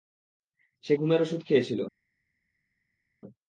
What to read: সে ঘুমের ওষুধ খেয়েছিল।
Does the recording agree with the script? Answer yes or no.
yes